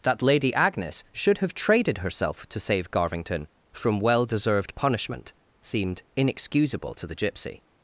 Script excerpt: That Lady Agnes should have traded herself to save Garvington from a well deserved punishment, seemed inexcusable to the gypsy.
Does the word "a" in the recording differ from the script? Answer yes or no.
yes